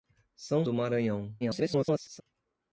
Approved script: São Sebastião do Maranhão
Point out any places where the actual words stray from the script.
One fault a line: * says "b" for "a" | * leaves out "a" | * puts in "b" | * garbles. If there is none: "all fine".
* leaves out "Sebastião"
* garbles